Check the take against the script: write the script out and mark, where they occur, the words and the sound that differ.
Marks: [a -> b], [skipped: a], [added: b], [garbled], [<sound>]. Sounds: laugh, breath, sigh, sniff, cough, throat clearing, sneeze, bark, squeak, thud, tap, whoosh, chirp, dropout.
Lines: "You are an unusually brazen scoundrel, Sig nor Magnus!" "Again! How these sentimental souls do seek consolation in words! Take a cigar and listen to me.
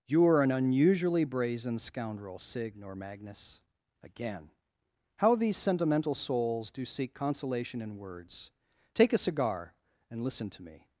"You are an unusually brazen scoundrel, Sig nor Magnus!" "Again! How these sentimental souls do seek consolation in words! Take a cigar and listen to me.